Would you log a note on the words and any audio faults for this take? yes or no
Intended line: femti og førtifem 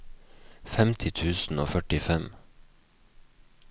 yes